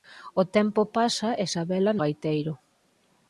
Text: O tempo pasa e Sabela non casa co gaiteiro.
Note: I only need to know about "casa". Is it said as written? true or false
false